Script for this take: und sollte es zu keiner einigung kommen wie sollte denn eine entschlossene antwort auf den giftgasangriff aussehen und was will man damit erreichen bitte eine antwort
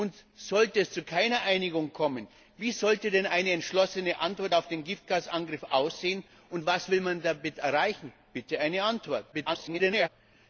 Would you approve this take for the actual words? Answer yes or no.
no